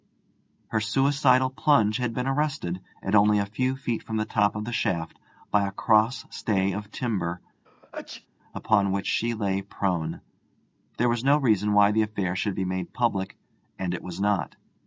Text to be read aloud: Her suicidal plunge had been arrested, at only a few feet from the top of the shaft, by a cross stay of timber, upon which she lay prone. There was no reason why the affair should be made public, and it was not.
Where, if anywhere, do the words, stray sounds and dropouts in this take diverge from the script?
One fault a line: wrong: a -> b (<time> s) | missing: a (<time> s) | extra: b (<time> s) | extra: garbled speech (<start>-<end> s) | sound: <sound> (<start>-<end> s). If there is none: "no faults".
sound: sneeze (7.6-8.3 s)